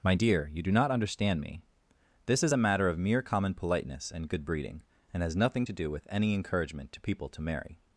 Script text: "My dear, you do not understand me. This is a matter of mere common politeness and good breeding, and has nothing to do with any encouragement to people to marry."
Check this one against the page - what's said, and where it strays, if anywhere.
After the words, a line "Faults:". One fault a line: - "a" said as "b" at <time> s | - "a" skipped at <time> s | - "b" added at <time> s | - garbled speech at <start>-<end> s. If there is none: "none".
"My dear, you do not understand me. This is a matter of mere common politeness and good breeding, and has nothing to do with any encouragement to people to marry."
Faults:
none